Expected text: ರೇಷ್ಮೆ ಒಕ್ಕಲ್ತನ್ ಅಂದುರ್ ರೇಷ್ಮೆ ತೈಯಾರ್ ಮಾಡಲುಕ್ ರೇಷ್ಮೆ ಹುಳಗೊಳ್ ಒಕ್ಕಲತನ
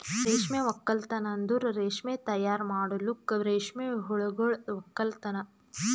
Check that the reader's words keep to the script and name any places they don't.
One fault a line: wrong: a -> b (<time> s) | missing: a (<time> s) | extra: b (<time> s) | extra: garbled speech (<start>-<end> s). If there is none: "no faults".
no faults